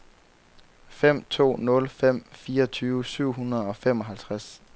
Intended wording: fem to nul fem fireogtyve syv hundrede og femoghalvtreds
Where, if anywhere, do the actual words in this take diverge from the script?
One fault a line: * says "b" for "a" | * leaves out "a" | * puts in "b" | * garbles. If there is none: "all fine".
all fine